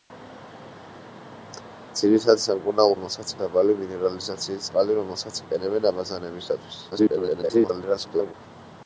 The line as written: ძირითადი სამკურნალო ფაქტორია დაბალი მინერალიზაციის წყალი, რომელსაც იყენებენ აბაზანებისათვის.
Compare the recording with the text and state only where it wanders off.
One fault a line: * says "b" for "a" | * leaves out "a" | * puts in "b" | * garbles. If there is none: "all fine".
* says "რომელსაც" for "ფაქტორია"
* garbles